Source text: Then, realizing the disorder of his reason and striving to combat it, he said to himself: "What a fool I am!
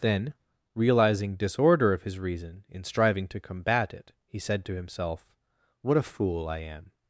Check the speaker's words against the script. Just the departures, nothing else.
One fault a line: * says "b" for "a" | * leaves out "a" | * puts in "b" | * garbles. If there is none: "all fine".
* leaves out "the"
* says "in" for "and"